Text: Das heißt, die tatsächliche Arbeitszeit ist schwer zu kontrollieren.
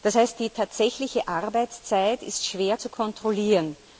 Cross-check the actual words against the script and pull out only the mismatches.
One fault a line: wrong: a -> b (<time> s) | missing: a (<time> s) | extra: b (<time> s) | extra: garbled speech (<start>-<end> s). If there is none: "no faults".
no faults